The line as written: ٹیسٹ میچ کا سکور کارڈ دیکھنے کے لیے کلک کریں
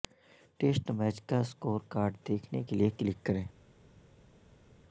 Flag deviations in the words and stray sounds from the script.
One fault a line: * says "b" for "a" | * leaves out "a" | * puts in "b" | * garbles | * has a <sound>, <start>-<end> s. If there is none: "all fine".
all fine